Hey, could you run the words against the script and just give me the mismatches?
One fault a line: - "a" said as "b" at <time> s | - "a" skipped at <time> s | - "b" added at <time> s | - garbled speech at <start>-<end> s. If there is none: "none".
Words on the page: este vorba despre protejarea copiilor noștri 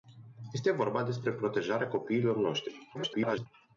- garbled speech at 2.9-3.5 s